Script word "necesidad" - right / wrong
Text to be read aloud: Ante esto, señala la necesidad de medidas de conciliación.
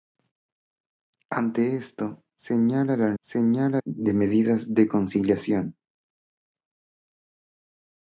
wrong